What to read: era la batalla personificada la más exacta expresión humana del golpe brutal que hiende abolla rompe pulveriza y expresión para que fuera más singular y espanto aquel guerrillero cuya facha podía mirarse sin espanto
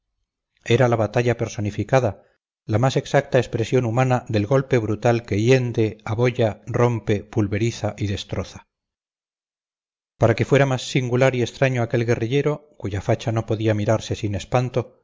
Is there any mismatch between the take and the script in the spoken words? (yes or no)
yes